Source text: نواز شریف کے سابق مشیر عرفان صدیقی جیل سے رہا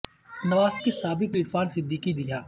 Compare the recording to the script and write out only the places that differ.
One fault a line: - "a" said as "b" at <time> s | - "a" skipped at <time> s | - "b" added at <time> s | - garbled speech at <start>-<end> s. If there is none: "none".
- "شریف" skipped at 0.7 s
- "مشیر" skipped at 1.4 s
- "جیل سے" skipped at 2.1 s